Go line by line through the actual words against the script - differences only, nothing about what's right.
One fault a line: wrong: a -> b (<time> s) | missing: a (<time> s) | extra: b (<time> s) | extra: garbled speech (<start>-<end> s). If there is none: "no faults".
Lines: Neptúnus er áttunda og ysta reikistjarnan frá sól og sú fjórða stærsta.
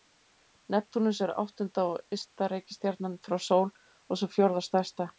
no faults